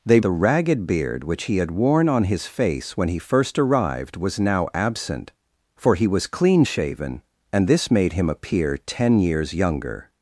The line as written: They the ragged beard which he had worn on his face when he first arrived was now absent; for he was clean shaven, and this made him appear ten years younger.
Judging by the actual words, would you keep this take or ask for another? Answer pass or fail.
pass